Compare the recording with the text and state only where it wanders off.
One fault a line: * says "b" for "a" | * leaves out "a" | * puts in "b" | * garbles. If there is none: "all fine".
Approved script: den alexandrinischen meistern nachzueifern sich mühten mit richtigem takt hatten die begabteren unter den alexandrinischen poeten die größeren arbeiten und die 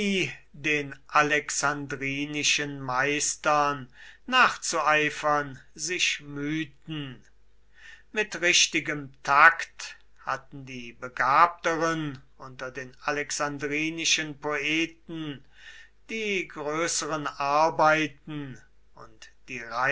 all fine